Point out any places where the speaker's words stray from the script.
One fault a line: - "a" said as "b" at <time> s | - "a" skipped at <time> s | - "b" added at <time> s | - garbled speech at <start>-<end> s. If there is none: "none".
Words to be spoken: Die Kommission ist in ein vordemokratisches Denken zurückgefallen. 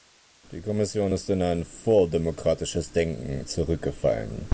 none